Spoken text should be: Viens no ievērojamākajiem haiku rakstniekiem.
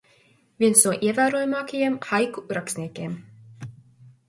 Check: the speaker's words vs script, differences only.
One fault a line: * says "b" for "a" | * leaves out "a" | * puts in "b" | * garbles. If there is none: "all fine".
all fine